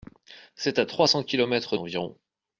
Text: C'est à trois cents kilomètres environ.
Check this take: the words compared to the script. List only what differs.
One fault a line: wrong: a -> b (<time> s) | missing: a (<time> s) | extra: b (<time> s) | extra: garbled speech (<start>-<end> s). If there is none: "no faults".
no faults